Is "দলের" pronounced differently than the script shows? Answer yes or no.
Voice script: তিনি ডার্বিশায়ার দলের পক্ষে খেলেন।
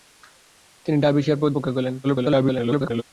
yes